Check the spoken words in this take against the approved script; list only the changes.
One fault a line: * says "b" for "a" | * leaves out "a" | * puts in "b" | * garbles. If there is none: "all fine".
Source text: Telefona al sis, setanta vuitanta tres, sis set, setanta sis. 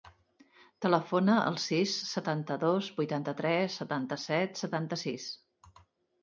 * puts in "dos"
* says "setanta" for "sis"